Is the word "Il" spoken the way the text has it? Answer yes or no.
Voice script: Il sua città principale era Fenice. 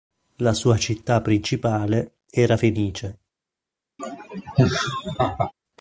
no